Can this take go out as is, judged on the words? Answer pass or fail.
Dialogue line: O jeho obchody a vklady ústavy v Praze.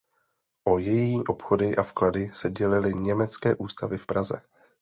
fail